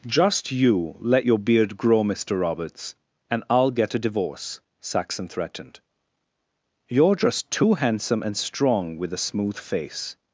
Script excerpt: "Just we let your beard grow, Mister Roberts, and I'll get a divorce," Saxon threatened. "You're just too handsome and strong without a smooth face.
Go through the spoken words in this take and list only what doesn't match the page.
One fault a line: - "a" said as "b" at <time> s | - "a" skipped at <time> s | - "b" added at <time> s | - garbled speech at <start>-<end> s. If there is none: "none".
- "we" said as "you" at 0.5 s
- "without" said as "with" at 9.0 s